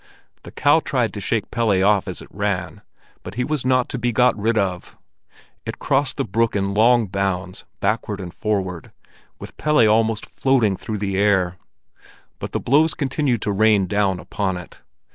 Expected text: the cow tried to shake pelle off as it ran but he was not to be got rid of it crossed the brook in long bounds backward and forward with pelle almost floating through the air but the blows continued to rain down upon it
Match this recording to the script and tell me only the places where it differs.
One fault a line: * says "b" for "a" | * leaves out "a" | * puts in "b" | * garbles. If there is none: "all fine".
all fine